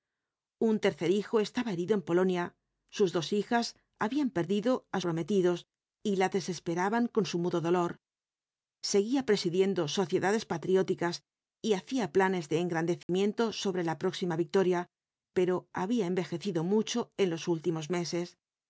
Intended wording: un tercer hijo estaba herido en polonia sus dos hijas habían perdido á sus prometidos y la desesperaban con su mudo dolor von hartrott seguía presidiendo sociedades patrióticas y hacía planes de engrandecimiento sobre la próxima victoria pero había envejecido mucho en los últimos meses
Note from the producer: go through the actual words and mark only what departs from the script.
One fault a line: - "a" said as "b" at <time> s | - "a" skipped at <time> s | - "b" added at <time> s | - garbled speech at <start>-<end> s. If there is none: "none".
- "sus" skipped at 5.0 s
- "von hartrott" skipped at 7.9 s